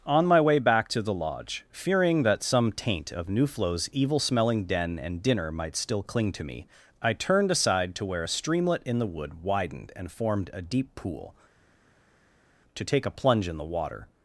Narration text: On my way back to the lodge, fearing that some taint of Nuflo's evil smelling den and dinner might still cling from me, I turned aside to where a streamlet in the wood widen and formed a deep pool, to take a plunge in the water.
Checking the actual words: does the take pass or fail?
fail